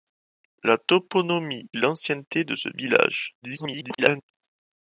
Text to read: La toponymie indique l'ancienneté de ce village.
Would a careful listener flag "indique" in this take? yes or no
yes